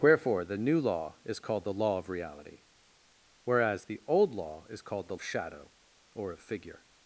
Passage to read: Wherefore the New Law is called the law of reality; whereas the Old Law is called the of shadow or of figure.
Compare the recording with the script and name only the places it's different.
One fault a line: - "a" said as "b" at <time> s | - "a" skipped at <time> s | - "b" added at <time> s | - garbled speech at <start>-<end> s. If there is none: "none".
none